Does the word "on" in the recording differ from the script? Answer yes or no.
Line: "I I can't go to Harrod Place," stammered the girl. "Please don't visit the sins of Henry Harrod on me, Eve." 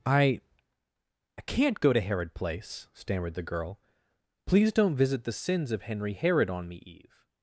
no